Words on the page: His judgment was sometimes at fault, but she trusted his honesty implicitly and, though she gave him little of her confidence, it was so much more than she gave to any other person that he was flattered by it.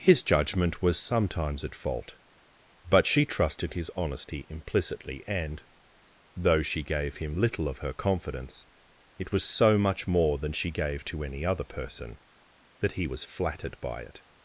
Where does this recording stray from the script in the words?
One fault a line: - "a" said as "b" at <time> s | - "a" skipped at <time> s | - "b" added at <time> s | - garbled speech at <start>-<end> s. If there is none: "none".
none